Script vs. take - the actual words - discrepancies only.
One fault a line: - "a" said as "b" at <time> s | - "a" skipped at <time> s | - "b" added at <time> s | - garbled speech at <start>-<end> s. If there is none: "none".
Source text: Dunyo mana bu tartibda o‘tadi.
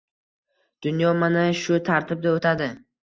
- "bu" said as "shu" at 1.6 s